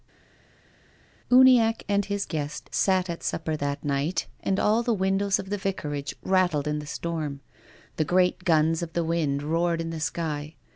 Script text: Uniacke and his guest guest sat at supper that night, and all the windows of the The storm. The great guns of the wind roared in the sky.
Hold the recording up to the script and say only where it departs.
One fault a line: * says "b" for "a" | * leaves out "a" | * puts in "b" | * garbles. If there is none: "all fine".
* leaves out "guest"
* puts in "Vicarage rattled in"